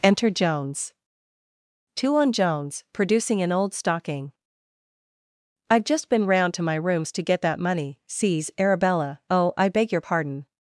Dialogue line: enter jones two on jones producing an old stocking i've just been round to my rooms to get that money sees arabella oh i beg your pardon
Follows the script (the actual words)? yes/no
yes